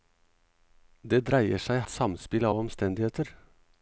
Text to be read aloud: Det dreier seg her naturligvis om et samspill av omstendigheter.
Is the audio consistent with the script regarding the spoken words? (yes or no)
no